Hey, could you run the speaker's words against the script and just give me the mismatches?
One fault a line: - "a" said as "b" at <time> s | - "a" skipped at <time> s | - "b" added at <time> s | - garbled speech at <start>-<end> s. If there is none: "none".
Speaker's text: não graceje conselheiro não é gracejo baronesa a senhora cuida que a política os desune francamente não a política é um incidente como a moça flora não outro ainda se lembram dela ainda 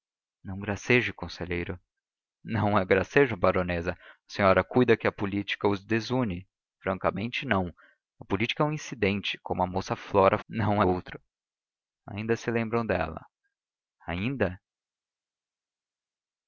none